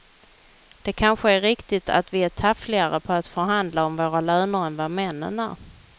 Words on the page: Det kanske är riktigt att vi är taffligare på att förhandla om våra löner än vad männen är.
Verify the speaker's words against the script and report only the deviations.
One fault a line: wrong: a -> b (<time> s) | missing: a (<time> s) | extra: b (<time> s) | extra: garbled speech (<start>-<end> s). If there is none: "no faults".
no faults